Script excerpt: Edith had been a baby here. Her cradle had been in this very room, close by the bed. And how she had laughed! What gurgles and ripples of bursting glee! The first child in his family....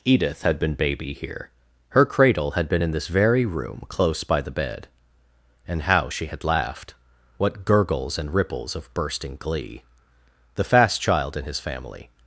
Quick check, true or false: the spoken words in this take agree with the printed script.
false